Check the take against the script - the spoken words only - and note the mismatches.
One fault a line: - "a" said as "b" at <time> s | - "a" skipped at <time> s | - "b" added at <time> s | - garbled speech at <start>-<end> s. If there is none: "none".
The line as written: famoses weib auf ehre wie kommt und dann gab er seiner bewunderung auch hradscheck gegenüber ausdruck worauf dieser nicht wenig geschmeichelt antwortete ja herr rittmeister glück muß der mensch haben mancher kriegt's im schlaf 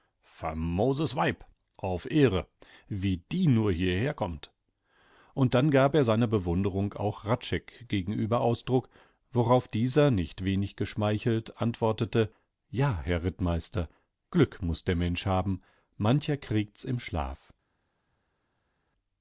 - "die nur hierher" added at 3.2 s